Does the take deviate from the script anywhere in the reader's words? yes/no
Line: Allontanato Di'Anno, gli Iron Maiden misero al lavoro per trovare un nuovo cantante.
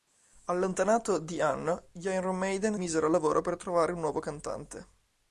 no